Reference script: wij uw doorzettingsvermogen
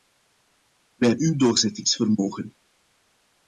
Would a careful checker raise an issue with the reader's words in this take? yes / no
no